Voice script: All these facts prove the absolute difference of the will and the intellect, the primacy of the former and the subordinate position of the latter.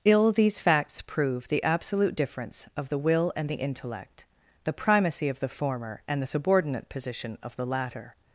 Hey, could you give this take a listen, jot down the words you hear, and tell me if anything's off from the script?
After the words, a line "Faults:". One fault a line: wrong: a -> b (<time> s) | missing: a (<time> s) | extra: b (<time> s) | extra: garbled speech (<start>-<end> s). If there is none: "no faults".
Ill these facts prove the absolute difference of the will and the intellect, the primacy of the former and the subordinate position of the latter.
Faults:
wrong: All -> Ill (0.0 s)